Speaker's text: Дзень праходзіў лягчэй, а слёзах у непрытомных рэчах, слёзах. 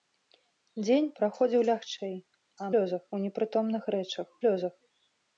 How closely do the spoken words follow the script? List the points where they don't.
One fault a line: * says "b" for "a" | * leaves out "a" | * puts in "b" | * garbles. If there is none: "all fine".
all fine